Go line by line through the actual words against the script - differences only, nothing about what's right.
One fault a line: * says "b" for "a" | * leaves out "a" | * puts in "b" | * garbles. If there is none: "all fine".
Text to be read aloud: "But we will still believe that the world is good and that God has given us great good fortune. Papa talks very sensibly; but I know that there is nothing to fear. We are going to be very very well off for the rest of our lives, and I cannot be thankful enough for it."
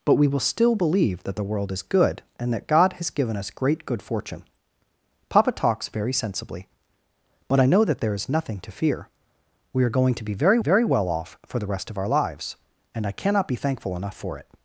all fine